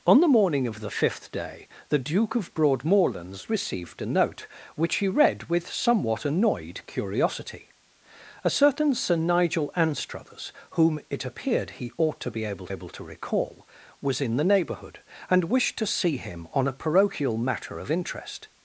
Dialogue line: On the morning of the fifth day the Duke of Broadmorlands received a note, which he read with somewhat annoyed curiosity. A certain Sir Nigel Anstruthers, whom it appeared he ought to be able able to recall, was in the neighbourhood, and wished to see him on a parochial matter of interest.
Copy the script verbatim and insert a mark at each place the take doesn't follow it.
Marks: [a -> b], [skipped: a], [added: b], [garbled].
On the morning of the fifth day the Duke of Broadmorlands received a note, which he read with somewhat annoyed curiosity. A certain Sir Nigel Anstruthers, whom it appeared he ought to be able able to recall, was in the neighbourhood, and wished to see him on a parochial matter of interest.